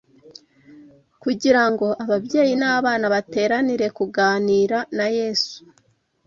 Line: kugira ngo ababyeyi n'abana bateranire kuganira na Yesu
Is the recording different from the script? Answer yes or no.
no